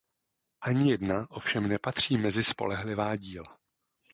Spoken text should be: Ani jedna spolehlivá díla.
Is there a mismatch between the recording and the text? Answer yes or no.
yes